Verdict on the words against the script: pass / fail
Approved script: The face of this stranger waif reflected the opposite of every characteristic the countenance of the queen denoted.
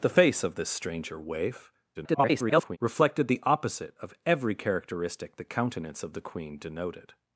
fail